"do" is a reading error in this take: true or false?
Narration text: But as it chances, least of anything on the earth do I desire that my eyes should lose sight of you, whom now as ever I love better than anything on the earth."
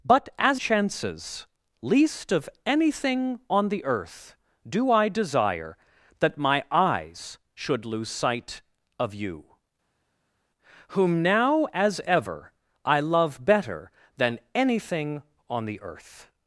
false